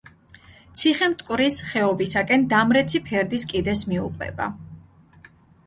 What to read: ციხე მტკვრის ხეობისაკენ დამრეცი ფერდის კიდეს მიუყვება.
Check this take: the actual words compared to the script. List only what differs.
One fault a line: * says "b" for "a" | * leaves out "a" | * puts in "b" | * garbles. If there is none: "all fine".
all fine